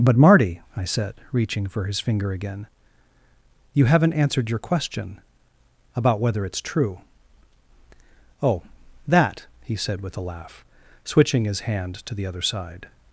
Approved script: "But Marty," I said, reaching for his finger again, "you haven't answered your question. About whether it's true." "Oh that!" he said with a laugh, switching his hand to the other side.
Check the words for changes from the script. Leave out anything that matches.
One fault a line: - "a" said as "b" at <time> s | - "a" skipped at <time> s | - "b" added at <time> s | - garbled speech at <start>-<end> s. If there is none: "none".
none